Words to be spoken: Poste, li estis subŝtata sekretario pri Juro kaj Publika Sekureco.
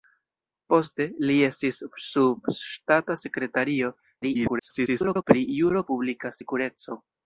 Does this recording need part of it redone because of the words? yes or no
yes